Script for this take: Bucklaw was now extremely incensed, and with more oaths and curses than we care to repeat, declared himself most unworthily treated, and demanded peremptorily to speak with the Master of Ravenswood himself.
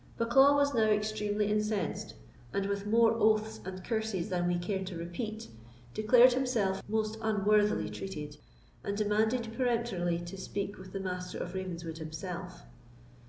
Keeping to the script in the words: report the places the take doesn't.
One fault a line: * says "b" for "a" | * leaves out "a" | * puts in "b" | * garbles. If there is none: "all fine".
all fine